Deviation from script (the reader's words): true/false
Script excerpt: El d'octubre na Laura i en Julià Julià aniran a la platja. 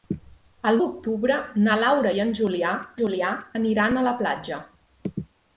false